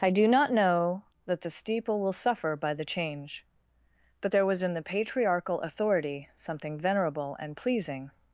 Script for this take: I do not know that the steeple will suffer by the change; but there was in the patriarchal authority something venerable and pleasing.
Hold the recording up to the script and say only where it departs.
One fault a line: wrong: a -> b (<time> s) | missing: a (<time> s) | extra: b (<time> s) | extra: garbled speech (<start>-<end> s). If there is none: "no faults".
no faults